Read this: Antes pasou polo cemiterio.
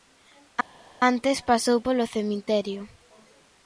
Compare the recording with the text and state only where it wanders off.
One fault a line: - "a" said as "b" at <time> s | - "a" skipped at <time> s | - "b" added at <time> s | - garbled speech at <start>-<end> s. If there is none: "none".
none